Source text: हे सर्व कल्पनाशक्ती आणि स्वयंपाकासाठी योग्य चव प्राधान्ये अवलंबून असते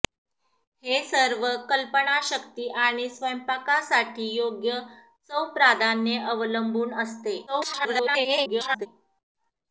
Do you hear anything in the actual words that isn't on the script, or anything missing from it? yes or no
yes